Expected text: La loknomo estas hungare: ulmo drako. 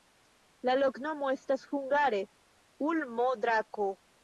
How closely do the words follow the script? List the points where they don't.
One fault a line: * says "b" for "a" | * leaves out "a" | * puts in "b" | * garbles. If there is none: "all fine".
all fine